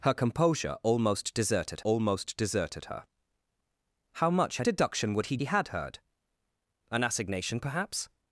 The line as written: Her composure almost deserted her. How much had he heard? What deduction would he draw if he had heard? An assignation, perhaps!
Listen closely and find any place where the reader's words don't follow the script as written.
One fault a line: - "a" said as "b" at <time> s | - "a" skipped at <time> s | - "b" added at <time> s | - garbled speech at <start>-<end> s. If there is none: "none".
- "almost deserted" added at 1.8 s
- "he heard What" skipped at 4.7 s
- "draw if" skipped at 5.4 s